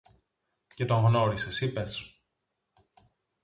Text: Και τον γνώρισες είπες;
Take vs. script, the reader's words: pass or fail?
pass